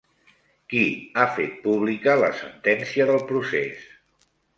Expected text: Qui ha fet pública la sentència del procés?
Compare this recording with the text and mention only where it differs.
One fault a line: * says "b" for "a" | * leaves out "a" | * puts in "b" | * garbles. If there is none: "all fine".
all fine